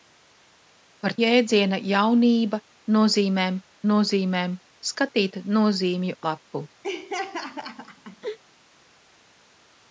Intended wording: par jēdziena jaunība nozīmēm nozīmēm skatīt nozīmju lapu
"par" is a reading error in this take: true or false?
false